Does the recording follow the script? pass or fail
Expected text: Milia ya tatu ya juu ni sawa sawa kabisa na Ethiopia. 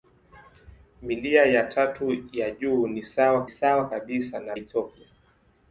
pass